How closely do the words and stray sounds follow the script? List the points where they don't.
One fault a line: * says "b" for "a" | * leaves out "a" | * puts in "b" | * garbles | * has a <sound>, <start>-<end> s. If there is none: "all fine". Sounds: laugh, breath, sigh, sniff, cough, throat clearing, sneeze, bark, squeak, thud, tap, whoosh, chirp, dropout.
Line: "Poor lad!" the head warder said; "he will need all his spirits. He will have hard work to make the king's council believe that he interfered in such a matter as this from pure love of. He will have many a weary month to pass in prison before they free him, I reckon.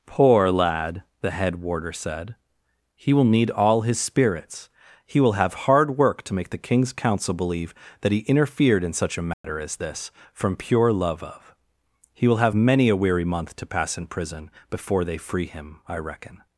* has a dropout, 9.3-9.4 s